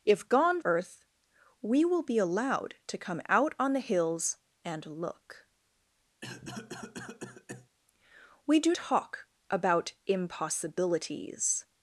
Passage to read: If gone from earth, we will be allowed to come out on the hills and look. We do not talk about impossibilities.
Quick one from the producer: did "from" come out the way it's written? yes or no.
no